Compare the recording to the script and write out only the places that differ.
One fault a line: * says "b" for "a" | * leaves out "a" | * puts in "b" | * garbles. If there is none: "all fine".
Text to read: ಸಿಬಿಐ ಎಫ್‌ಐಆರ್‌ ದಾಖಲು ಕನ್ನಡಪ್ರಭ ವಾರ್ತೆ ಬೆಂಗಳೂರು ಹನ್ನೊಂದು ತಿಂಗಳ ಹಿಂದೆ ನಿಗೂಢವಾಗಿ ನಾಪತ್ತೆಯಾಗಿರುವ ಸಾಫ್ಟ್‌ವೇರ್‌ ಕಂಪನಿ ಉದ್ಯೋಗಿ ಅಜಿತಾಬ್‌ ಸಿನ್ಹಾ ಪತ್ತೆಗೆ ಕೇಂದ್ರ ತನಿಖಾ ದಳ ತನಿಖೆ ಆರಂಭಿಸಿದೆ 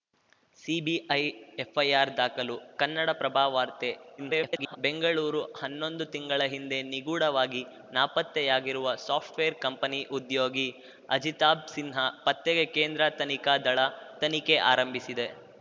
* garbles